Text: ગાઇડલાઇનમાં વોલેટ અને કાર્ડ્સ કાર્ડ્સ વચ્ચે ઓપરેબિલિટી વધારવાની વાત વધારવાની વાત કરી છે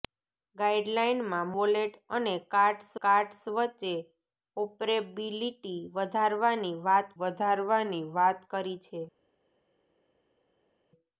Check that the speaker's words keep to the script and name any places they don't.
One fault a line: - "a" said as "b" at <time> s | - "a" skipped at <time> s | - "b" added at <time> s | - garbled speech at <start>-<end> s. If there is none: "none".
none